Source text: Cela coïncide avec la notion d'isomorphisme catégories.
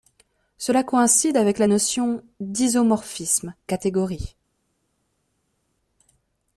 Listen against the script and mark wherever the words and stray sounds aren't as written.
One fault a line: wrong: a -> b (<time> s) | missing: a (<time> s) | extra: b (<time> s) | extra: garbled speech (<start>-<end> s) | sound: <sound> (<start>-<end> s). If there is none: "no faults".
no faults